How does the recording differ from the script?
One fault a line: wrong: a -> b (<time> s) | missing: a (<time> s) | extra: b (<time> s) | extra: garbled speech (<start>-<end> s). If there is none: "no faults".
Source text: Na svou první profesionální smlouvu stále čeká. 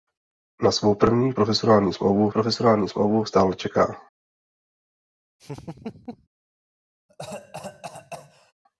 extra: profesionální smlouvu (2.3 s)